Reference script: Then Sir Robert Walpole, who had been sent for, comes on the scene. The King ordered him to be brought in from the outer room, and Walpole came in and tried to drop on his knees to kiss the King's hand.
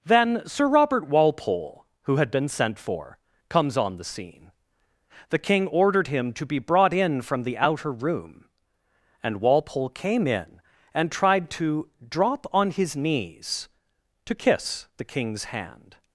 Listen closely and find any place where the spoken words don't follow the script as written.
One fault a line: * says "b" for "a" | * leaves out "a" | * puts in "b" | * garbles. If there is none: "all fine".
all fine